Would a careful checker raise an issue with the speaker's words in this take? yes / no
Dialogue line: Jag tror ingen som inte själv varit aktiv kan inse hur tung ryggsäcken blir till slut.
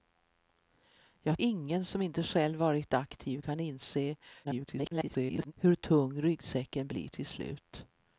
yes